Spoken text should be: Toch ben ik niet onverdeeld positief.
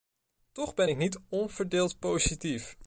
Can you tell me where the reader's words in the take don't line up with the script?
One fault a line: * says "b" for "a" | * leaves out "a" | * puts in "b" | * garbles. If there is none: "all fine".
all fine